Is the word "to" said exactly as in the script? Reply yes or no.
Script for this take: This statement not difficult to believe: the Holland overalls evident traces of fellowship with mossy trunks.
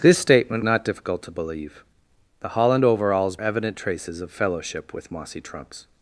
yes